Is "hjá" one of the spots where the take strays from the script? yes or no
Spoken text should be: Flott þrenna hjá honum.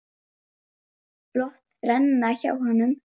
no